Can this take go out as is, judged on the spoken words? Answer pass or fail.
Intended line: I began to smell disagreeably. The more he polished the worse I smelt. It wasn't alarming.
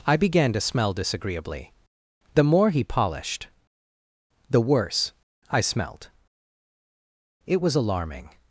fail